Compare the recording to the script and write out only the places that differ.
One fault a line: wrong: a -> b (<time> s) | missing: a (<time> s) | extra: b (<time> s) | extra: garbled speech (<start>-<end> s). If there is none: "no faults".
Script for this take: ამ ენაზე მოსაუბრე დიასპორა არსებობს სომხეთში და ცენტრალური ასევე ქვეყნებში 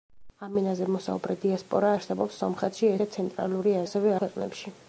no faults